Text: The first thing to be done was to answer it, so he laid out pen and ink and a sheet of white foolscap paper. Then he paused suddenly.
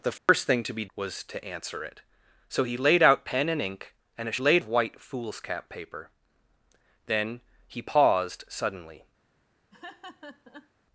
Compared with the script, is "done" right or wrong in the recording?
wrong